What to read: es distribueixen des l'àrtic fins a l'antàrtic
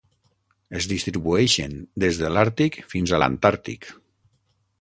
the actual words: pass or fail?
fail